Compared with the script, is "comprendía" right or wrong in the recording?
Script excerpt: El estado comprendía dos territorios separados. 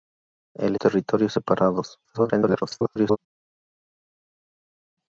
wrong